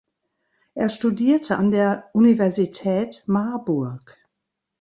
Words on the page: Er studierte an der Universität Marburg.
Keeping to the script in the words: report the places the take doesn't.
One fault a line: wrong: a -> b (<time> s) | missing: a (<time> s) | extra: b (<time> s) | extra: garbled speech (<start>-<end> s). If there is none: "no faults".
no faults